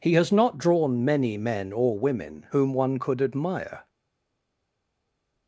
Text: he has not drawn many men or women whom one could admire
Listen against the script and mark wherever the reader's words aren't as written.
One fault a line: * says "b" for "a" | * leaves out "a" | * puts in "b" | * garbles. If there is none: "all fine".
all fine